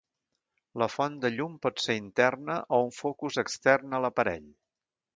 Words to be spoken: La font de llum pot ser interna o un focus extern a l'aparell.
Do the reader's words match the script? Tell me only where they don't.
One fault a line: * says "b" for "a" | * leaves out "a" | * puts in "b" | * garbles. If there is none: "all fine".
all fine